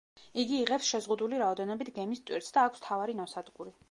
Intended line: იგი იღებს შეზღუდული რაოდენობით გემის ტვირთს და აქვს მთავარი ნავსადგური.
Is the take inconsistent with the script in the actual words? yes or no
no